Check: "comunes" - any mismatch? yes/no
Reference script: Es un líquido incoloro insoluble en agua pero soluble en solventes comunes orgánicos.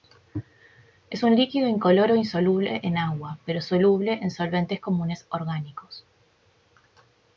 no